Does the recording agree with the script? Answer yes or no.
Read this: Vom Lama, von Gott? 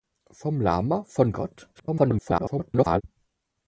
no